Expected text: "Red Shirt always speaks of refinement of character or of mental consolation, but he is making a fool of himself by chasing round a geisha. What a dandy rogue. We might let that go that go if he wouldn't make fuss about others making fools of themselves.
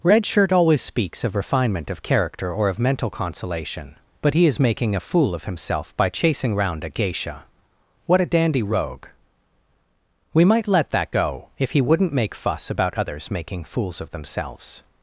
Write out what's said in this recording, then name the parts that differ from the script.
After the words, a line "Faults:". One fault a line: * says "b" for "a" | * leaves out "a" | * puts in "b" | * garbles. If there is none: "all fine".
"Red Shirt always speaks of refinement of character or of mental consolation, but he is making a fool of himself by chasing round a geisha. What a dandy rogue. We might let that go if he wouldn't make fuss about others making fools of themselves.
Faults:
* leaves out "that go"